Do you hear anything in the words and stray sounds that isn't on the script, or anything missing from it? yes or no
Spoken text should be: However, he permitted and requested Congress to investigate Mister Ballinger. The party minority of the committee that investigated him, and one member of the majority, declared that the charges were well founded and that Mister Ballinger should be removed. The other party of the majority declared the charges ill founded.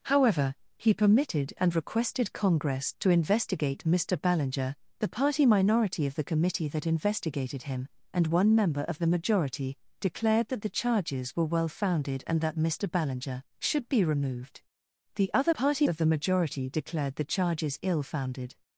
no